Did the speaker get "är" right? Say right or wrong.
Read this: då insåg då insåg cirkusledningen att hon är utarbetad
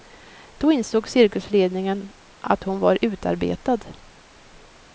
wrong